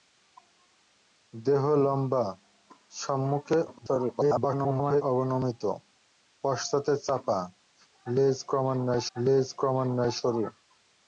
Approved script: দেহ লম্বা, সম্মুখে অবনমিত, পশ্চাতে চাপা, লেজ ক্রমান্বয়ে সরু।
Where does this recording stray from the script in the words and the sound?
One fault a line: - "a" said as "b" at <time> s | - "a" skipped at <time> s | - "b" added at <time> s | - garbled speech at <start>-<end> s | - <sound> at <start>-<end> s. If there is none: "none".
- garbled speech at 3.7-5.0 s
- "লেজ ক্রমান্বয়ে" added at 9.2 s